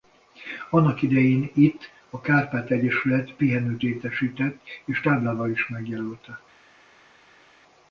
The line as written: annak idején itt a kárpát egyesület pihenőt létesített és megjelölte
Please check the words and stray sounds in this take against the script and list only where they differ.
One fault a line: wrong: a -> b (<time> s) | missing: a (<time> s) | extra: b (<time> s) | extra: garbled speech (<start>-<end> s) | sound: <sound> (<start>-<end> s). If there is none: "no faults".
extra: táblával is (5.0 s)